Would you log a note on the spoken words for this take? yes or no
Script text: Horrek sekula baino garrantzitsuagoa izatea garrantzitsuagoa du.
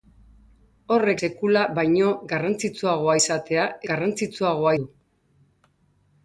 no